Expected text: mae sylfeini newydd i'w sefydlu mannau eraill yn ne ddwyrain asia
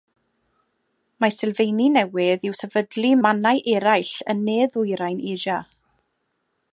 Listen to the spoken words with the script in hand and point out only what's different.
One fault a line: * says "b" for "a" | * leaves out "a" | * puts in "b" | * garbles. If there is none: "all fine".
all fine